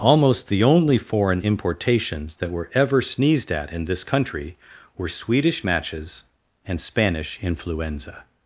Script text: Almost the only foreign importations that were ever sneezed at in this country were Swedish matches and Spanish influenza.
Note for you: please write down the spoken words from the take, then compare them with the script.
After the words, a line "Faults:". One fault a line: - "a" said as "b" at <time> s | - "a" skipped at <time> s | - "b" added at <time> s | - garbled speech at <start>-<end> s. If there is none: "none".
Almost the only foreign importations that were ever sneezed at in this country were Swedish matches and Spanish influenza.
Faults:
none